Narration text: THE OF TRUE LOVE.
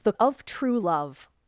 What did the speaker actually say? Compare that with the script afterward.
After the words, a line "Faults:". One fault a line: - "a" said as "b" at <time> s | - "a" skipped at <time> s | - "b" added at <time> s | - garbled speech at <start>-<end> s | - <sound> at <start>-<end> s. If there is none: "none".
THE OF TRUE LOVE.
Faults:
none